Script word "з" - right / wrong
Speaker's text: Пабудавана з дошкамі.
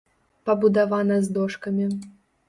right